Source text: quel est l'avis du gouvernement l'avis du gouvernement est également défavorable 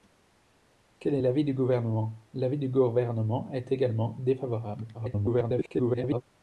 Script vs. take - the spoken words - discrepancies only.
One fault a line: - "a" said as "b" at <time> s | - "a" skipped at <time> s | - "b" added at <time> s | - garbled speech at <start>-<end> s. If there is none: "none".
- garbled speech at 4.9-6.2 s